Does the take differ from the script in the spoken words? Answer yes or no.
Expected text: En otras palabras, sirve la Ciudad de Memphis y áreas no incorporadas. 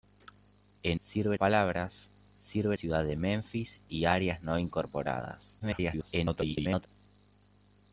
yes